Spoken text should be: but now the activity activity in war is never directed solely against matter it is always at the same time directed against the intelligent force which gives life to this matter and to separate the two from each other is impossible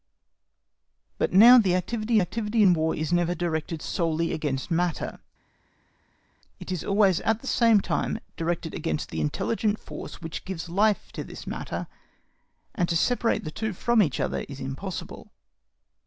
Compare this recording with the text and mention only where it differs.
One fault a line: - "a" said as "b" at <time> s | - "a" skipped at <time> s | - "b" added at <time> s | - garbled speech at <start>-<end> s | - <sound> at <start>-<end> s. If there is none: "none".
none